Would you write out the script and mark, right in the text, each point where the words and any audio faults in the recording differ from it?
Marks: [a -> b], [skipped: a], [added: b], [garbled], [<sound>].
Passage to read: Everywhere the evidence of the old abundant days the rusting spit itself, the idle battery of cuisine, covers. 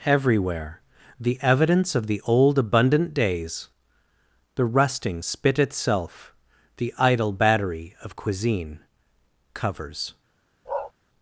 Everywhere the evidence of the old abundant days the rusting spit itself, the idle battery of cuisine, covers. [bark]